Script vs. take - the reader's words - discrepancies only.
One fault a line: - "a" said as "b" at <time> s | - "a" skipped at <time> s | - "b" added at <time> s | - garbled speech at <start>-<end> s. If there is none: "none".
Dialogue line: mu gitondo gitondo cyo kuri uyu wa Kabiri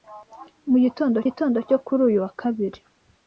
none